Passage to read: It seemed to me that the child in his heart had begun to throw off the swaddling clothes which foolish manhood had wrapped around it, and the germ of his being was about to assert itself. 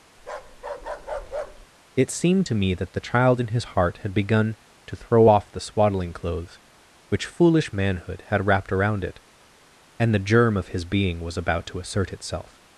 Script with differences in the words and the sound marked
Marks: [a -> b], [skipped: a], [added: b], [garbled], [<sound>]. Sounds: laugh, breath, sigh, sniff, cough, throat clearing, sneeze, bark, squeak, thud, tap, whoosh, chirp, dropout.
[bark] It seemed to me that the child in his heart had begun to throw off the swaddling clothes which foolish manhood had wrapped around it, and the germ of his being was about to assert itself.